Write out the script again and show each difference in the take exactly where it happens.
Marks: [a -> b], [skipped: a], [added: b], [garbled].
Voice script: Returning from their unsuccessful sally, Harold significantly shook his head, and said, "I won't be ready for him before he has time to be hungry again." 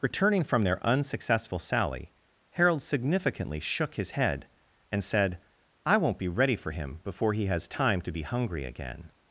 Returning from their unsuccessful sally, Harold significantly shook his head, and said, "I won't be ready for him before he has time to be hungry again."